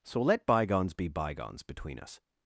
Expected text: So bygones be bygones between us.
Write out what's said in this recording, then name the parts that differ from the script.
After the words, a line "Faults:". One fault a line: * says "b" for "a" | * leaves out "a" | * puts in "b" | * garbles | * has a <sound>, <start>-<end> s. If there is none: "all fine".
So let bygones be bygones between us.
Faults:
* puts in "let"